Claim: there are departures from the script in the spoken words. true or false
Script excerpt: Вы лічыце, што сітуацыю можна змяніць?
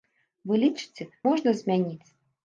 true